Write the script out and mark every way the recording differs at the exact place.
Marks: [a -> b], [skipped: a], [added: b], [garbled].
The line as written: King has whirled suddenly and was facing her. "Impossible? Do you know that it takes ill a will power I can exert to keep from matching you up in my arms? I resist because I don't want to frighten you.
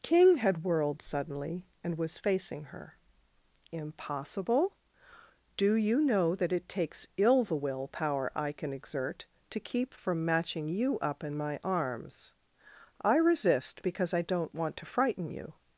King [has -> had] whirled suddenly and was facing her. "Impossible? Do you know that it takes ill [a -> the] will power I can exert to keep from matching you up in my arms? I resist because I don't want to frighten you.